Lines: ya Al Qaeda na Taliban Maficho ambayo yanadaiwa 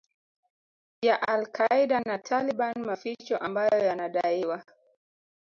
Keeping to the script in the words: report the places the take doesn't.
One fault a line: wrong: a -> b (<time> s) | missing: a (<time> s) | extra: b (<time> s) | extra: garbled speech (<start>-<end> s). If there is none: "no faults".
no faults